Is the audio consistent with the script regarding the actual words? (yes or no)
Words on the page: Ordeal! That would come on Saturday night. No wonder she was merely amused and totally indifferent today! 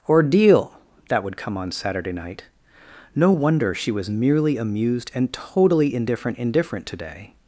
no